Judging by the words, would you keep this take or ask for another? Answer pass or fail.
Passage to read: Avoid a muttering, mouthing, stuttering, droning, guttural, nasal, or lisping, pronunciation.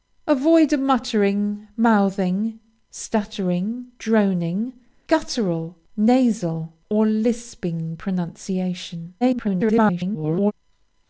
fail